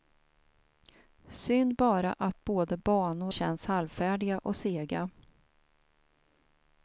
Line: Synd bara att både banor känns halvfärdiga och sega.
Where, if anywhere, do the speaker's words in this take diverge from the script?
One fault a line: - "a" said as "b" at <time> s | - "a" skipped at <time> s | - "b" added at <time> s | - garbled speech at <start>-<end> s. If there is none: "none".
none